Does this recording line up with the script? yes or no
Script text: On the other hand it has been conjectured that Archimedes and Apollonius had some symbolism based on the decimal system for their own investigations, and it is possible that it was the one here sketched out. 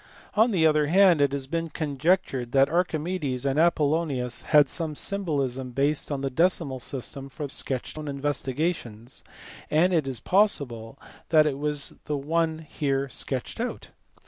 no